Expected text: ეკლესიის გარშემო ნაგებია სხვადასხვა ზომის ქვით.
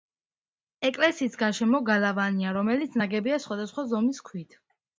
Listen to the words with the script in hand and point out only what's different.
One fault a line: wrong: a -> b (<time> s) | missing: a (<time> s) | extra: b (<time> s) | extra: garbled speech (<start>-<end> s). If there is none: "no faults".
extra: გალავანია რომელიც (1.9 s)